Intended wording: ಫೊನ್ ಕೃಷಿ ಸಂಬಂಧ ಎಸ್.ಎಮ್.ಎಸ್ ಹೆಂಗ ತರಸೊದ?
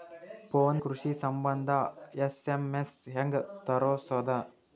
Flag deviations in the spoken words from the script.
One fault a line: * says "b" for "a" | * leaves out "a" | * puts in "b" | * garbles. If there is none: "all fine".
all fine